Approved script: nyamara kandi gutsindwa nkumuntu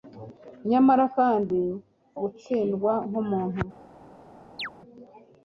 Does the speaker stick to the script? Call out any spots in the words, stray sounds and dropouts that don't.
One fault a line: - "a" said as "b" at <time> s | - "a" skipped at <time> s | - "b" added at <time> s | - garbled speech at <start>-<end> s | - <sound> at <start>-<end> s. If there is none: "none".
- chirp at 4.6-4.7 s